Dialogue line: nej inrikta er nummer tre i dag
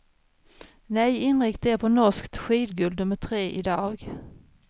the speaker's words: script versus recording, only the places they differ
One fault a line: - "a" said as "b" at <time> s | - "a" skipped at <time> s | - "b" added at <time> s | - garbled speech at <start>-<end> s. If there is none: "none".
- "på norskt skidguld" added at 1.7 s